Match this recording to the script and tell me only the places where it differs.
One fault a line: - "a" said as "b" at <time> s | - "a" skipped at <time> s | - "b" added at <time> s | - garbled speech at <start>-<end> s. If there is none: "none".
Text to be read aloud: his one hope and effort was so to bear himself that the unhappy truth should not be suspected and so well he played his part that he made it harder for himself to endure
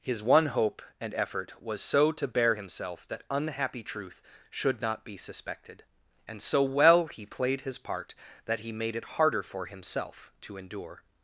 - "the" skipped at 3.2 s